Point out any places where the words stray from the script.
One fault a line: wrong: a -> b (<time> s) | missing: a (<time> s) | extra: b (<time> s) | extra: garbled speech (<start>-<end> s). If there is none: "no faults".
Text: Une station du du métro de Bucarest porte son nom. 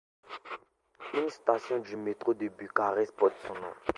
missing: du (2.0 s)